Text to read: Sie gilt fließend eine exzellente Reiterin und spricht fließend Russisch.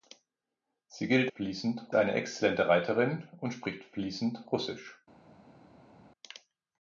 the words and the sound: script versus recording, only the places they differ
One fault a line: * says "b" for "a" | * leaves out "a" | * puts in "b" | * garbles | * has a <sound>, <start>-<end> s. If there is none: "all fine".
all fine